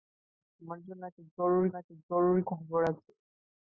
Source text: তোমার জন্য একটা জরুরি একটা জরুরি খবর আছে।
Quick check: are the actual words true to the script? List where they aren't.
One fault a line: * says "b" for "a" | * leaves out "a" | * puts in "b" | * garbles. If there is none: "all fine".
all fine